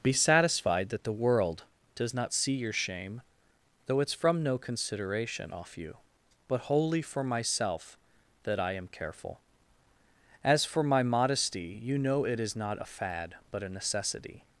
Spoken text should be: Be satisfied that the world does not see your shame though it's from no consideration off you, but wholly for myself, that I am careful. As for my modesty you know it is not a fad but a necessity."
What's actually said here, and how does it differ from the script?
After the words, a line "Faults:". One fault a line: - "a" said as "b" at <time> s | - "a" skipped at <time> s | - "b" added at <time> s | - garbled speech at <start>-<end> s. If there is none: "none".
Be satisfied that the world does not see your shame though it's from no consideration off you, but wholly for myself, that I am careful. As for my modesty you know it is not a fad but a necessity."
Faults:
none